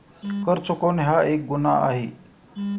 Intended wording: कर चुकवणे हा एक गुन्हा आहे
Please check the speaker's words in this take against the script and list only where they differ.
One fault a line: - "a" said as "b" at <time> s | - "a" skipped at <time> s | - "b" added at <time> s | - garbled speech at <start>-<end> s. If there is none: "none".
none